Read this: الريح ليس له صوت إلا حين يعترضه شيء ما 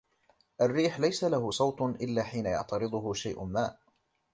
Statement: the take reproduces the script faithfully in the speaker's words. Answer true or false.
true